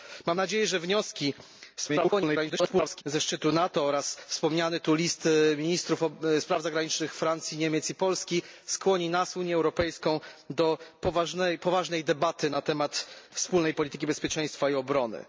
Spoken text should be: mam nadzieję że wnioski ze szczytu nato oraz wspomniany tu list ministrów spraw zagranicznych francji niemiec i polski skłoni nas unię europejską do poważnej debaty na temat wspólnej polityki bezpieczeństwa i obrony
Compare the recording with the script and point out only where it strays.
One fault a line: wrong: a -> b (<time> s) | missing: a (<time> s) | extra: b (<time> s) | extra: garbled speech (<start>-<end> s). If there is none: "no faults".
extra: garbled speech (1.8-3.0 s)